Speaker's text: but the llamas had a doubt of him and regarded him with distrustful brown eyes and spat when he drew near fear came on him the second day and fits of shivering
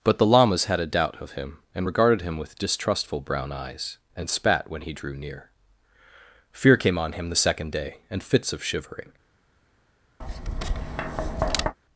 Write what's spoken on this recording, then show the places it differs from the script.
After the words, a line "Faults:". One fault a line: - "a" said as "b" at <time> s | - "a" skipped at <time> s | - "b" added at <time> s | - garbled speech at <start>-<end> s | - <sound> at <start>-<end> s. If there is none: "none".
but the llamas had a doubt of him and regarded him with distrustful brown eyes and spat when he drew near fear came on him the second day and fits of shivering
Faults:
- tap at 10.2-11.8 s